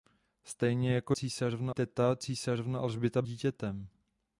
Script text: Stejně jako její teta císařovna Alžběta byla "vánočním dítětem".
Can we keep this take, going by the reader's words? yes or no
no